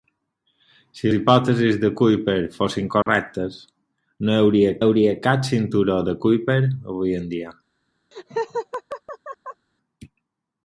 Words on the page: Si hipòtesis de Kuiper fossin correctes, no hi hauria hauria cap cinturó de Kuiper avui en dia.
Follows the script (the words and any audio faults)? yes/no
no